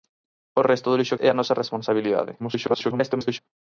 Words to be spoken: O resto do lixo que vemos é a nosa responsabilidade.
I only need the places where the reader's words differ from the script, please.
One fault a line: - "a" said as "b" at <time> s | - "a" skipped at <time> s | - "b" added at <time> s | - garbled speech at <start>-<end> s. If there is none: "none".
- "que vemos" skipped at 1.2 s
- garbled speech at 2.4-3.4 s